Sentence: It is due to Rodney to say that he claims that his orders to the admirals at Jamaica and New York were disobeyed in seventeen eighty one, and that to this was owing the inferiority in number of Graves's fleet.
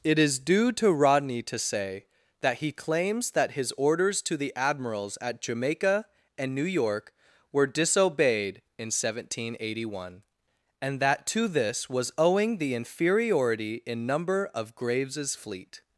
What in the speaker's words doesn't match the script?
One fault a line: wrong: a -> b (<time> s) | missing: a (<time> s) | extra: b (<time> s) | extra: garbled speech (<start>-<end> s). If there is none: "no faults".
no faults